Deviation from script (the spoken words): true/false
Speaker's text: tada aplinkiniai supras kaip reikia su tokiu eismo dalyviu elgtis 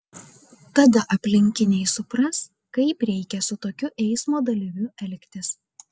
false